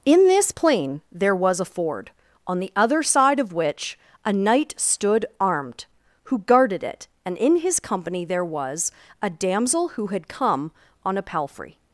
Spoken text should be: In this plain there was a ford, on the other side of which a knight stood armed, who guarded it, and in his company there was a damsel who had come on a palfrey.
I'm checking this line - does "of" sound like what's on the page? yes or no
yes